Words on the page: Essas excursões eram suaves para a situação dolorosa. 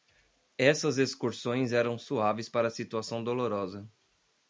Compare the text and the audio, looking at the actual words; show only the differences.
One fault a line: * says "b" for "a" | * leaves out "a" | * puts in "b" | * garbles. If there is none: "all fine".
all fine